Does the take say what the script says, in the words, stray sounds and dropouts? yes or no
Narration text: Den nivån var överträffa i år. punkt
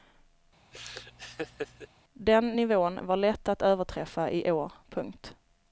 no